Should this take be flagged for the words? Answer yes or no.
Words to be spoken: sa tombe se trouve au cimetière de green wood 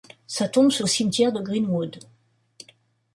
yes